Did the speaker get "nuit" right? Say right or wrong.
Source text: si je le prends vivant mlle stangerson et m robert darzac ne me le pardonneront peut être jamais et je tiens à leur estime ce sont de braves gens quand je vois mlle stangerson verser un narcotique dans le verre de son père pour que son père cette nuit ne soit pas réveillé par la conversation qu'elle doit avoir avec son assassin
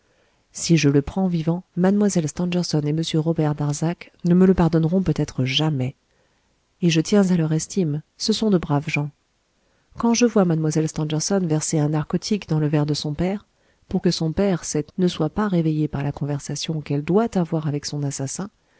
wrong